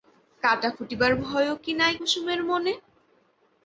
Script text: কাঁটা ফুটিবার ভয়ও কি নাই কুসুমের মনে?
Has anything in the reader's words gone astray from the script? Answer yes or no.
no